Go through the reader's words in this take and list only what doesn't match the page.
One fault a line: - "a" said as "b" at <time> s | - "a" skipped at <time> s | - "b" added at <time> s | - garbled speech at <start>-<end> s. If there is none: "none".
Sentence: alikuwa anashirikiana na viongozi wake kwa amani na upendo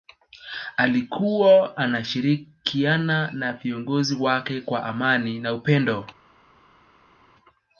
none